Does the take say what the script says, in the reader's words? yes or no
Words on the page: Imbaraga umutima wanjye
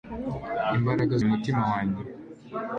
yes